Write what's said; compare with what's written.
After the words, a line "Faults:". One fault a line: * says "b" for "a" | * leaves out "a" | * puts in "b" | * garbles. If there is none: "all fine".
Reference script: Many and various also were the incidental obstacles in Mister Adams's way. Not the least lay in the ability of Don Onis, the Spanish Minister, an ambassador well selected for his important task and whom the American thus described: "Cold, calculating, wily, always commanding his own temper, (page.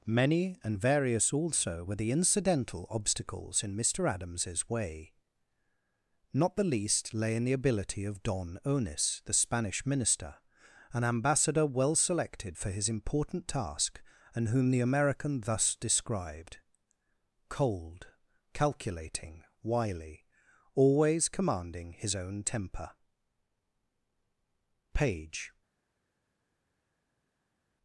Many and various also were the incidental obstacles in Mister Adams's way. Not the least lay in the ability of Don Onis, the Spanish Minister, an ambassador well selected for his important task and whom the American thus described: "Cold, calculating, wily, always commanding his own temper, (page.
Faults:
all fine